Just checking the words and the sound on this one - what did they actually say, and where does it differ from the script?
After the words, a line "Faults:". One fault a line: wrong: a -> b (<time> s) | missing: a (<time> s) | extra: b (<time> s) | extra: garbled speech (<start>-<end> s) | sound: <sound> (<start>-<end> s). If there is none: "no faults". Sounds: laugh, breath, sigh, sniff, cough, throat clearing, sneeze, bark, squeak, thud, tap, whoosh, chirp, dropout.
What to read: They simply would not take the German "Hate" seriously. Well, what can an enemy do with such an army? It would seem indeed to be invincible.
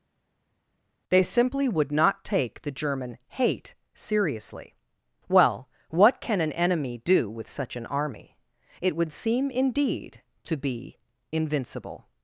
They simply would not take the German "Hate" seriously. Well, what can an enemy do with such an army? It would seem indeed to be invincible.
Faults:
no faults